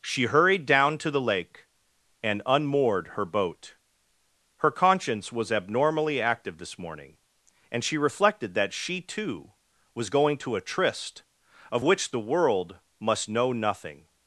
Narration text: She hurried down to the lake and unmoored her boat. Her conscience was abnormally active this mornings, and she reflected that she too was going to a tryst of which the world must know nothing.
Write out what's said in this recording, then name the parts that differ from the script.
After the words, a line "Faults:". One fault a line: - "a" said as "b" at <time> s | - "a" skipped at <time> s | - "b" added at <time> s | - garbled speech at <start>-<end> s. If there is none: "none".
She hurried down to the lake and unmoored her boat. Her conscience was abnormally active this morning, and she reflected that she too was going to a tryst of which the world must know nothing.
Faults:
- "mornings" said as "morning" at 6.8 s